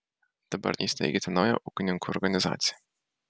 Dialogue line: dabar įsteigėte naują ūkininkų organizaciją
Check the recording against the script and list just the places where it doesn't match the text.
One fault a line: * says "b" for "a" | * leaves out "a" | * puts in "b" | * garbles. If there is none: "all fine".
all fine